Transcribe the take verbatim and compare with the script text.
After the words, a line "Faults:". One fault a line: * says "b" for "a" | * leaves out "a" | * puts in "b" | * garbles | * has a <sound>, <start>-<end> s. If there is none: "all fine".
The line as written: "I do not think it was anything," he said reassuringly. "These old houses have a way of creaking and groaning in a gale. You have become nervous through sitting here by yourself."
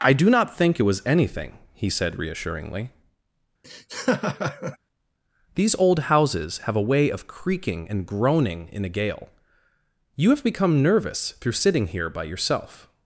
"I do not think it was anything," he said reassuringly. "These old houses have a way of creaking and groaning in a gale. You have become nervous through sitting here by yourself."
Faults:
* has a laugh, 3.6-4.8 s